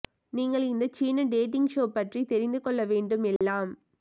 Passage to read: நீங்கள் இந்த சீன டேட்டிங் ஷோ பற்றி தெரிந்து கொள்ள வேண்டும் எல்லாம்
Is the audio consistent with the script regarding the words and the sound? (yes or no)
no